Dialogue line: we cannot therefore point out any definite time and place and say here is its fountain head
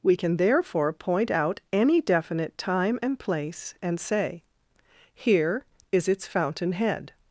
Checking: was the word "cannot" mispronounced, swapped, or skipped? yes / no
yes